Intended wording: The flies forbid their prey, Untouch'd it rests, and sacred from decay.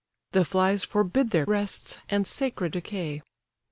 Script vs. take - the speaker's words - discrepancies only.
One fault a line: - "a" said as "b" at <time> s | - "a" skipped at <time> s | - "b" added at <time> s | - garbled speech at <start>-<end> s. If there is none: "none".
- "prey Untouch'd it" skipped at 1.4 s
- "from" skipped at 2.7 s